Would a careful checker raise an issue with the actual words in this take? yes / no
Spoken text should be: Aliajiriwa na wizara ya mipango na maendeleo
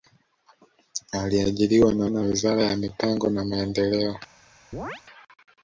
yes